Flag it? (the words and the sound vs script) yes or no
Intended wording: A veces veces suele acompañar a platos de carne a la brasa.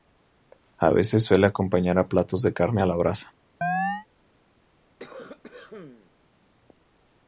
yes